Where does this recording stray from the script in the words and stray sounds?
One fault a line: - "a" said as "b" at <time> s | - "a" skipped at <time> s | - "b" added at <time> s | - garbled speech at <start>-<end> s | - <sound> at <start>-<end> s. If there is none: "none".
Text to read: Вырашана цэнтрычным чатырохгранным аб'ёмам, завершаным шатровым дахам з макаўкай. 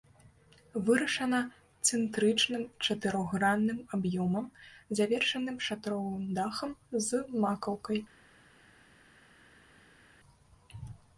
none